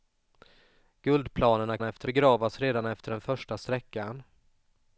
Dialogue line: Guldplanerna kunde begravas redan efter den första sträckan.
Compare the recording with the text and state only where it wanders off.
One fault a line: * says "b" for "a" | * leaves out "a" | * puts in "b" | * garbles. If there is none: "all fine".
* says "efter" for "kunde"